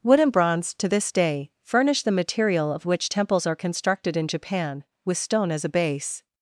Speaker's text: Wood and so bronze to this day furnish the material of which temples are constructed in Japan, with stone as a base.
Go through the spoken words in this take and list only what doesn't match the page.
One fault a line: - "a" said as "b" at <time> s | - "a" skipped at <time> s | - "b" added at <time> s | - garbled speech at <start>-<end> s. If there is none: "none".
- "so" skipped at 0.3 s